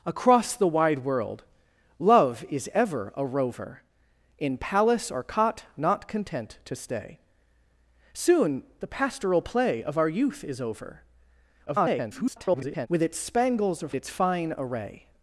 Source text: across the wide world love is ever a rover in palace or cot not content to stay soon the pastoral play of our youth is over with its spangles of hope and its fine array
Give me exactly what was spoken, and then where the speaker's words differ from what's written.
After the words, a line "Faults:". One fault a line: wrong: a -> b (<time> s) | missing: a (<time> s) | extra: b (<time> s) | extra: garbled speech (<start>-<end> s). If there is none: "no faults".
across the wide world love is ever a rover in palace or cot not content to stay soon the pastoral play of our youth is over [garbled] with its spangles of its fine array
Faults:
extra: garbled speech (11.7-12.9 s)
missing: hope and (13.9 s)